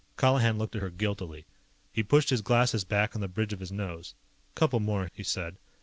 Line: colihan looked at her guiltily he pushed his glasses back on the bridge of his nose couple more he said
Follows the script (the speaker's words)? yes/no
yes